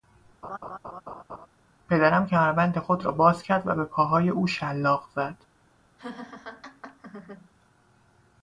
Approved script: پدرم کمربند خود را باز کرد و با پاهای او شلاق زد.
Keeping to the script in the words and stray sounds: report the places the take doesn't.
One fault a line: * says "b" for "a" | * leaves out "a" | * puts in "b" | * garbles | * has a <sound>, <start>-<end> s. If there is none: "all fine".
* has a laugh, 0.4-1.5 s
* says "به" for "با"
* has a laugh, 6.0-7.5 s